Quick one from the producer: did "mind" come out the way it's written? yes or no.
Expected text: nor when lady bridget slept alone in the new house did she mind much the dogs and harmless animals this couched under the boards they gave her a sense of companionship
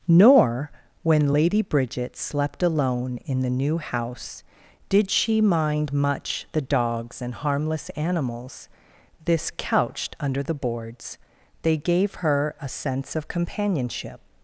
yes